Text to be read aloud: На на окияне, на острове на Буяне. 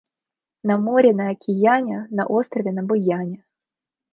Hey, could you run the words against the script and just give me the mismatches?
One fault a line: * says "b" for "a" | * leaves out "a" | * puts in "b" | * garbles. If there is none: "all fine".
* puts in "море"